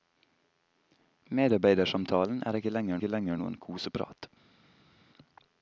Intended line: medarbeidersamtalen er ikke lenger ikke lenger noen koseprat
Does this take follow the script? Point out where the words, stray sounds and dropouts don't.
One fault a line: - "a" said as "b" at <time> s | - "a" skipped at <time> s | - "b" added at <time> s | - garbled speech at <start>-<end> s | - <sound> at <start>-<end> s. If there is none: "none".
none